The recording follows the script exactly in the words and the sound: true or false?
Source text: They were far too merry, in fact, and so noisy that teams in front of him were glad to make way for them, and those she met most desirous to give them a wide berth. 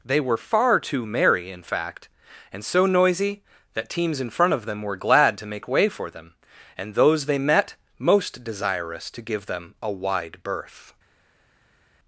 false